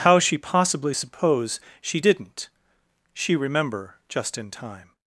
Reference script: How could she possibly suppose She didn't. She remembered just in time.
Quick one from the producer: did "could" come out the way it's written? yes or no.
no